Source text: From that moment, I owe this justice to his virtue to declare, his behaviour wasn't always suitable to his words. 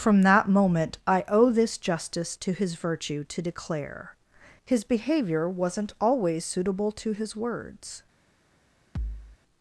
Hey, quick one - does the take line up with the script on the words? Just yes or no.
yes